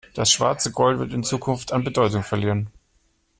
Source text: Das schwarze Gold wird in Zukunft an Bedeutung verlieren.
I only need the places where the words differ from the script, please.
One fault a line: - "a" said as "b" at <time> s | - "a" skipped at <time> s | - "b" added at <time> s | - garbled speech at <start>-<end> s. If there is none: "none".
none